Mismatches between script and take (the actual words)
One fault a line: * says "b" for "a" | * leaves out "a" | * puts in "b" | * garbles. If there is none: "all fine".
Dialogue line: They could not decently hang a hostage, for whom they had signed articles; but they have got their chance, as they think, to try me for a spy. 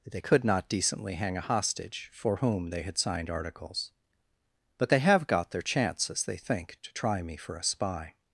all fine